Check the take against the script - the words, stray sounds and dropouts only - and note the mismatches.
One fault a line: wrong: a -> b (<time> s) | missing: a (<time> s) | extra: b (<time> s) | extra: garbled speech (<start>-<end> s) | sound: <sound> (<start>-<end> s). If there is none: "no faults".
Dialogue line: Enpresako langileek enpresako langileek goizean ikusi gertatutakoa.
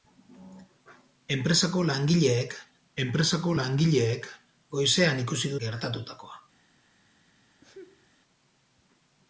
sound: sneeze (7.6-8.1 s)